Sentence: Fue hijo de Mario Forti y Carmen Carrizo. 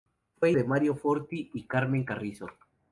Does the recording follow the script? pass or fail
fail